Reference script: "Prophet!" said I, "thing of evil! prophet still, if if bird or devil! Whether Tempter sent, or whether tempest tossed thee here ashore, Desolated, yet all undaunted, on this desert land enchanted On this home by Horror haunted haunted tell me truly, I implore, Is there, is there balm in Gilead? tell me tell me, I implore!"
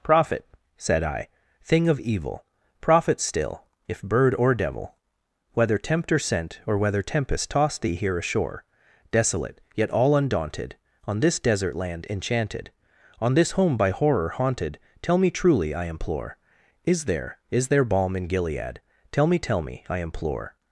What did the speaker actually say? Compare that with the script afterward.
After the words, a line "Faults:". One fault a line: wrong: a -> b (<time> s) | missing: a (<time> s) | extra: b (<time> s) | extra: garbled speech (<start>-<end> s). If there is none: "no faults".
"Prophet!" said I, "thing of evil! prophet still, if bird or devil! Whether Tempter sent, or whether tempest tossed thee here ashore, Desolate, yet all undaunted, on this desert land enchanted On this home by Horror haunted tell me truly, I implore, Is there, is there balm in Gilead? tell me tell me, I implore!"
Faults:
missing: if (4.0 s)
wrong: Desolated -> Desolate (9.1 s)
missing: haunted (14.8 s)